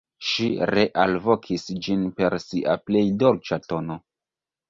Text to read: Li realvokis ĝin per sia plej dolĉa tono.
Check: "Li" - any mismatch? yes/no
yes